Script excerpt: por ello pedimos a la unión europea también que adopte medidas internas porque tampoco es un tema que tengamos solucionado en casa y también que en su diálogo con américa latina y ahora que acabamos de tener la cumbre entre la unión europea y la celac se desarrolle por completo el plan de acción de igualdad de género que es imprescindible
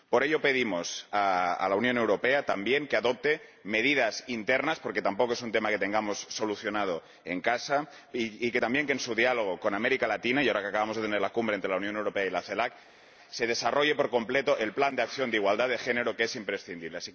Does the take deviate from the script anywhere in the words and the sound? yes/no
no